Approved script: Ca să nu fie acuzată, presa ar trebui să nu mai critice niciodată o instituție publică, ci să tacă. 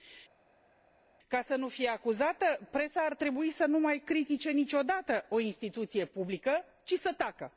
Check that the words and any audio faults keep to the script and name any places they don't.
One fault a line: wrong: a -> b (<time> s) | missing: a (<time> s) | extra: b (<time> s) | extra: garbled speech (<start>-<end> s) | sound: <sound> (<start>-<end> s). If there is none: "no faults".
no faults